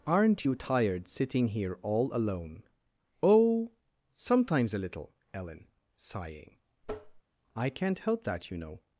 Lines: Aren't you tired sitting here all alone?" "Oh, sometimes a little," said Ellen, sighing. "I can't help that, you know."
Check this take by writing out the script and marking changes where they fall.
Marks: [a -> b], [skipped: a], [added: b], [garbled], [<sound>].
Aren't you tired sitting here all alone?" "Oh, sometimes a little," [skipped: said] Ellen, sighing. [tap] "I can't help that, you know."